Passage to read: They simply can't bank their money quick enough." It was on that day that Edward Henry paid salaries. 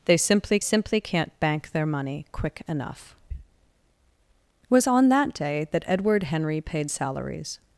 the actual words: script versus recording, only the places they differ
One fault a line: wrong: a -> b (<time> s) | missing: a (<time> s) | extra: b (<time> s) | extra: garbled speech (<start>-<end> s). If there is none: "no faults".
extra: simply (0.6 s)